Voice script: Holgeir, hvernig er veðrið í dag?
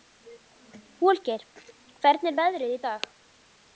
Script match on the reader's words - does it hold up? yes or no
yes